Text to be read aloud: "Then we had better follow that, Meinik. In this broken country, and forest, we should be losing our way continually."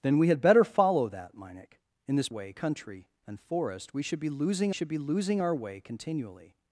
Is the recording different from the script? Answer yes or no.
yes